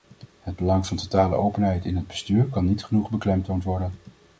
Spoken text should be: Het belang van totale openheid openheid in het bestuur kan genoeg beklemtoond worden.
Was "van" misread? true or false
false